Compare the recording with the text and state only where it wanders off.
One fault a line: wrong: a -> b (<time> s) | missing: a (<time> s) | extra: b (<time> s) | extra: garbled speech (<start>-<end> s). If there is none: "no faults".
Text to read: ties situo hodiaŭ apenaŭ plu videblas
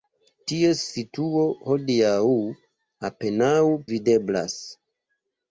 missing: plu (3.5 s)